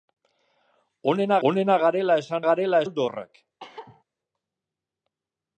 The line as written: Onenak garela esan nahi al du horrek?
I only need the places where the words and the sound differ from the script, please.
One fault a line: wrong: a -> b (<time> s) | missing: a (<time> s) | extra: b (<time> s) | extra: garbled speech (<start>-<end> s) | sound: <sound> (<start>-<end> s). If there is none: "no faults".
extra: onenak (1.5 s)
wrong: nahi -> garela (2.4 s)
sound: cough (3.6-4.0 s)